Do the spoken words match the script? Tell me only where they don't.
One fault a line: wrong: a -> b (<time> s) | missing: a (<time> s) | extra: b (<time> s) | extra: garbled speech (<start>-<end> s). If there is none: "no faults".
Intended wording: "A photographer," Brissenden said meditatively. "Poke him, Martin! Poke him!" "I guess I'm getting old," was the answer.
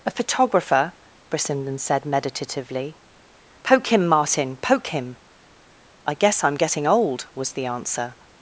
no faults